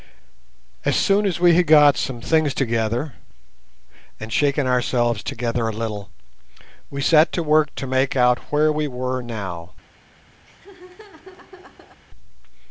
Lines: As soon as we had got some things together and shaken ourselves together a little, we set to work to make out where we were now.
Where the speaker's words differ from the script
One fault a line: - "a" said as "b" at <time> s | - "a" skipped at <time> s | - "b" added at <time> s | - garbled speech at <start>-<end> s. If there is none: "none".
none